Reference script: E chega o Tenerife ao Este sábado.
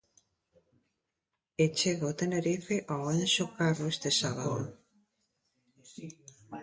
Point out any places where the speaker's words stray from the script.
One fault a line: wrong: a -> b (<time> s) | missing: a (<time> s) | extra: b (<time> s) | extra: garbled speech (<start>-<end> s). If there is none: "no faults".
extra: Anxo Carro (3.2 s)